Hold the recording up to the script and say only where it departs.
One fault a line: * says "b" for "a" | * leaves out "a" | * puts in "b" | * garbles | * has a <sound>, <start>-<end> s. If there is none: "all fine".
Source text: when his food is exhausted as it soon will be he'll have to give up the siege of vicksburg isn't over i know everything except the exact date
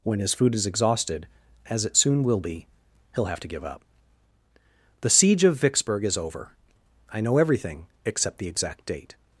* says "is" for "isn't"